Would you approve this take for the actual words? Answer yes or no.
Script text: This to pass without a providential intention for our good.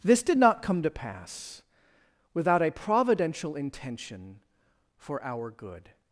no